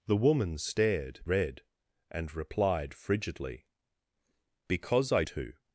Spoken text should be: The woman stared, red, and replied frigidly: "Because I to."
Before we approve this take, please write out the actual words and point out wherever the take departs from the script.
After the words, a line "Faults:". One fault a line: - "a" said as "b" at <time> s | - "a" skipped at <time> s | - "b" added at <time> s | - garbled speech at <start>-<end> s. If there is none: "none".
The woman stared, red, and replied frigidly: "Because I to."
Faults:
none